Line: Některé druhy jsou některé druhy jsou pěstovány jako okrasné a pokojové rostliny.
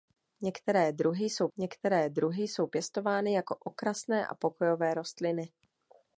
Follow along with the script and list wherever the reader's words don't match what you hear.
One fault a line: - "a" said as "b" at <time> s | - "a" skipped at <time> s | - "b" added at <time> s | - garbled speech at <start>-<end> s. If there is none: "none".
none